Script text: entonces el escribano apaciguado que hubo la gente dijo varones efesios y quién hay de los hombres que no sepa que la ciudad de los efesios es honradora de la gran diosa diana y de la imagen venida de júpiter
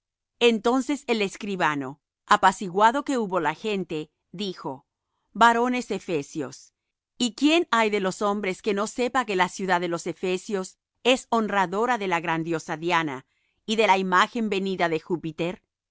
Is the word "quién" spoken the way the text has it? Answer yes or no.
yes